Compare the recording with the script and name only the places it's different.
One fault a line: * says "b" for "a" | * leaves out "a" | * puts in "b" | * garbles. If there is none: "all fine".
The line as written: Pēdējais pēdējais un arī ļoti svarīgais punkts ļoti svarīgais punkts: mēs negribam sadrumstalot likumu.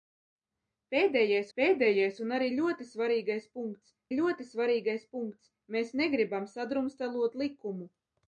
all fine